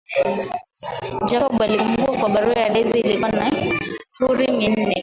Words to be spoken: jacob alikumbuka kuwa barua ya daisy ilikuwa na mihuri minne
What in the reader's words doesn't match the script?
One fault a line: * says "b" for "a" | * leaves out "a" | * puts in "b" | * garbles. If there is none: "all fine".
all fine